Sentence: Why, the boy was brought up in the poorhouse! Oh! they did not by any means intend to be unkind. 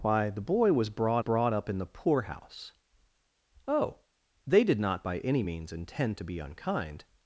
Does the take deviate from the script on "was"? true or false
false